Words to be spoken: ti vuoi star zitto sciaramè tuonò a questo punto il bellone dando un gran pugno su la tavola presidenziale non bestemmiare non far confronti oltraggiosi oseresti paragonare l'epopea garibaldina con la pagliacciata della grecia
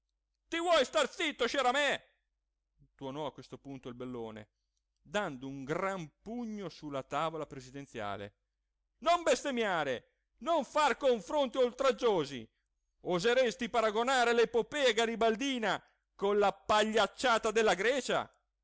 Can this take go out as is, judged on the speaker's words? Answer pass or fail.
pass